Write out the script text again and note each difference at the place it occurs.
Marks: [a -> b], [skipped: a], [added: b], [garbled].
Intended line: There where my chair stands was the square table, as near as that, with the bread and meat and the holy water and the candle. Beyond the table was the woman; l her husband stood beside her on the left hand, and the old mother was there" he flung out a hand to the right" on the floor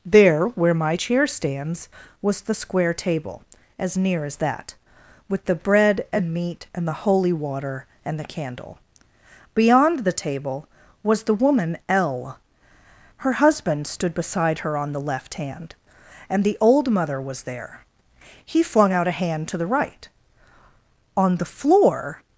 There where my chair stands was the square table, as near as that, with the bread and meat and the holy water and the candle. Beyond the table was the woman; l her husband stood beside her on the left hand, and the old mother was there" he flung out a hand to the right" on the floor